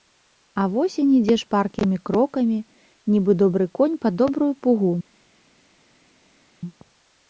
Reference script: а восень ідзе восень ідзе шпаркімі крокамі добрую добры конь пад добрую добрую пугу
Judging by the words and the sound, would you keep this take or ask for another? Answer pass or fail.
fail